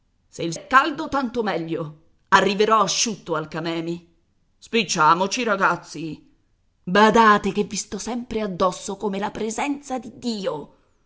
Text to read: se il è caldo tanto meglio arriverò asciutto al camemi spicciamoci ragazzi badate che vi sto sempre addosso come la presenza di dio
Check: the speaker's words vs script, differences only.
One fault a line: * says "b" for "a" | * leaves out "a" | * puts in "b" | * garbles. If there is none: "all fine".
all fine